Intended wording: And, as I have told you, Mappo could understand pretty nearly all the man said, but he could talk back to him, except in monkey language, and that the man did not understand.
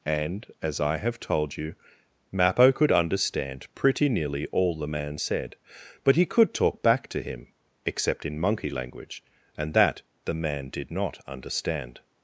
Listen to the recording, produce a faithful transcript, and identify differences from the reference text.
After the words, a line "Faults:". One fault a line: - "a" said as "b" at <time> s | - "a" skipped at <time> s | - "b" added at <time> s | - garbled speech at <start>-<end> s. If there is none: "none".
And, as I have told you, Mappo could understand pretty nearly all the man said, but he could talk back to him, except in monkey language, and that the man did not understand.
Faults:
none